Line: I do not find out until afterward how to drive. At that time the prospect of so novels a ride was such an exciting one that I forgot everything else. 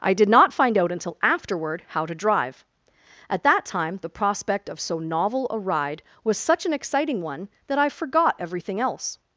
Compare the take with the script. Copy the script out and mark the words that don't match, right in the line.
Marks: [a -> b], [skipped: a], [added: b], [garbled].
I [do -> did] not find out until afterward how to drive. At that time the prospect of so [novels -> novel] a ride was such an exciting one that I forgot everything else.